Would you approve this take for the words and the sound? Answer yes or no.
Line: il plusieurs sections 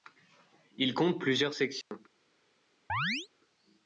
no